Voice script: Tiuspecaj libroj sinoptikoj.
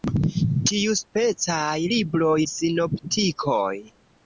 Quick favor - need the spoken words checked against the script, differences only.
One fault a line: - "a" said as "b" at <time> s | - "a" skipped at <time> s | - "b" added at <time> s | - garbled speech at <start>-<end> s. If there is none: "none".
none